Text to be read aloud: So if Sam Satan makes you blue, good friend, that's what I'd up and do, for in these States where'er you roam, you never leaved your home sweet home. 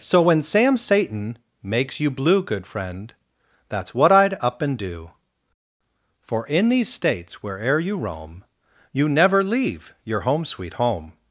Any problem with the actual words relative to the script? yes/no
yes